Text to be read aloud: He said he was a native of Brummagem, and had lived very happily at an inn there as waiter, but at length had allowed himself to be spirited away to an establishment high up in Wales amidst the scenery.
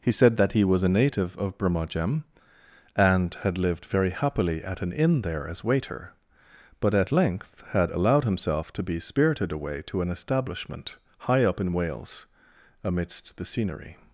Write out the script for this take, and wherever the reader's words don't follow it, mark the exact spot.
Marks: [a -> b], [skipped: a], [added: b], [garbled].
He said [added: that] he was a native of Brummagem, and had lived very happily at an inn there as waiter, but at length had allowed himself to be spirited away to an establishment high up in Wales amidst the scenery.